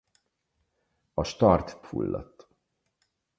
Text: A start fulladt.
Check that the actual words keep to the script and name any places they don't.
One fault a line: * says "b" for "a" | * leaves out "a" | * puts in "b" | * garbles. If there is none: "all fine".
all fine